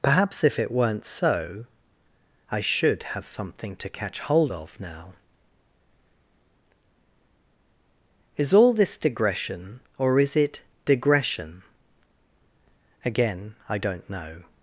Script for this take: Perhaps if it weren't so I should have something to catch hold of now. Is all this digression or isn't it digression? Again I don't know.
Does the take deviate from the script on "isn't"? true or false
true